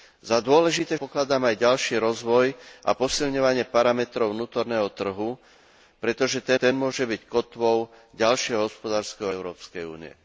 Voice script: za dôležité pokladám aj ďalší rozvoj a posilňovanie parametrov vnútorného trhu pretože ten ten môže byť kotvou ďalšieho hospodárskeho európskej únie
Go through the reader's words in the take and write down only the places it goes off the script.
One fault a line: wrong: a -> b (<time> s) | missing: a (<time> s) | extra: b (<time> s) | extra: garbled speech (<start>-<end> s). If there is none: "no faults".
no faults